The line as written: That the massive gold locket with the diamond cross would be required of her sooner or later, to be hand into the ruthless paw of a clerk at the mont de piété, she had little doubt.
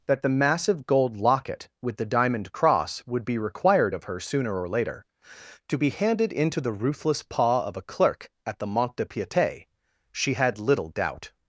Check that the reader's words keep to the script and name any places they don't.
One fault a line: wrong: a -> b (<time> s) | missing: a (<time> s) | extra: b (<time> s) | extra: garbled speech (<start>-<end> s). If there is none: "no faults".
wrong: hand -> handed (5.9 s)